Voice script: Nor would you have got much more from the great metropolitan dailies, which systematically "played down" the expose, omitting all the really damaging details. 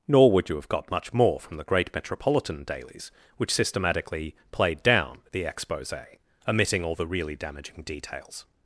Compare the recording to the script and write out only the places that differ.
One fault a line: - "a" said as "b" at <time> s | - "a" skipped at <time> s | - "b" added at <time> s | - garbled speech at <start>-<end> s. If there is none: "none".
none